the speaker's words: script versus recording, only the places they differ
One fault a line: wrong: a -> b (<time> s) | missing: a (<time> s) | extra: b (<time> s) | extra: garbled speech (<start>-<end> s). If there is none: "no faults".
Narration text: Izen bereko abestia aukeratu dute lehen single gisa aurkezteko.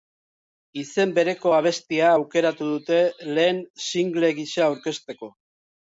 no faults